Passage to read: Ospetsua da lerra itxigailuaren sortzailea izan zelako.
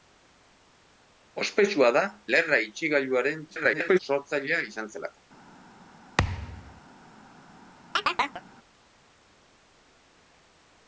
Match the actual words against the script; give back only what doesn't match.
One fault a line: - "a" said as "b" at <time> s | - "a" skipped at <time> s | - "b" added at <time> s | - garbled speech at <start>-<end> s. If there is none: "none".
- garbled speech at 3.5-4.0 s